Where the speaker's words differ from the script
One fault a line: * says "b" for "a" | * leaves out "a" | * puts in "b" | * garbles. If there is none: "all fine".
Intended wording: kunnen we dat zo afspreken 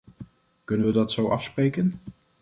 all fine